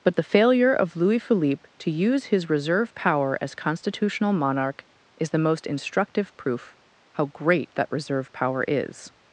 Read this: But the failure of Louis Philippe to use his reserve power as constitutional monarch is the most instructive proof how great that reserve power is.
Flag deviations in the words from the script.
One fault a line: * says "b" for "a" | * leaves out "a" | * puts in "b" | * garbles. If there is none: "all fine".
all fine